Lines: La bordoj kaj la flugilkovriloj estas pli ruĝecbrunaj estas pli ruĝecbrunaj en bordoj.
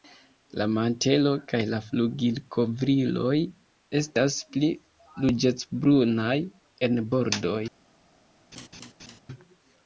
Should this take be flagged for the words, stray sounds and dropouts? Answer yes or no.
yes